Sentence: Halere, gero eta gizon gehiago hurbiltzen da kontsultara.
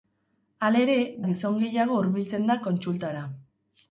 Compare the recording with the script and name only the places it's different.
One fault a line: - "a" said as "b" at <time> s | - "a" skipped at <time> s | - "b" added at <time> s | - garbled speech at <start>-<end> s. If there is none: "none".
- "gero eta" skipped at 0.9 s